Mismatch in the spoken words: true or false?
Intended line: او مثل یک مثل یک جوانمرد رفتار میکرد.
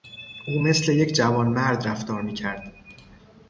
true